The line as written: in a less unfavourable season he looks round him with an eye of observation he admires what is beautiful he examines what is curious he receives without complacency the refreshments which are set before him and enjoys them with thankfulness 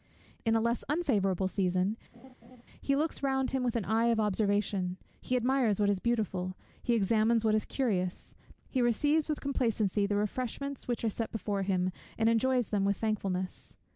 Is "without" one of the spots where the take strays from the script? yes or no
yes